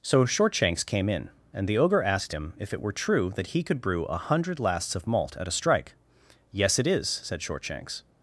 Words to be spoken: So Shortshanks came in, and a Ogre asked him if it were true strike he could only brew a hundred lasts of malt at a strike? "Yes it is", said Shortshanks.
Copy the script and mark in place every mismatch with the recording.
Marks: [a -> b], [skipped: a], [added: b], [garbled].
So Shortshanks came in, and [a -> the] Ogre asked him if it were true [strike -> that] he could [skipped: only] brew a hundred lasts of malt at a strike? "Yes it is", said Shortshanks.